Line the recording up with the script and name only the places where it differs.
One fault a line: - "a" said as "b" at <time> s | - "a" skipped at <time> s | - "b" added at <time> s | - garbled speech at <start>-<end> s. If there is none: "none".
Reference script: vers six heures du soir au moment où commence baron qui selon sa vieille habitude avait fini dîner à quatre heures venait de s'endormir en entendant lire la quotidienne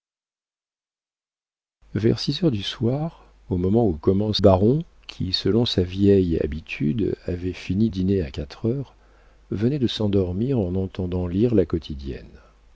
none